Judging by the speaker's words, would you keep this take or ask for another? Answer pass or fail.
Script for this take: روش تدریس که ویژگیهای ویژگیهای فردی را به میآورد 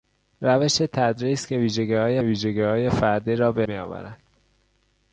pass